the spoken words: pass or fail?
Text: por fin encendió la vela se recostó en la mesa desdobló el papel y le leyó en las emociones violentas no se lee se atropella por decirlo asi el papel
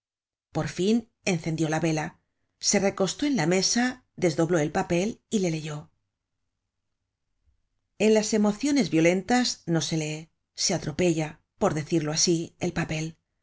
pass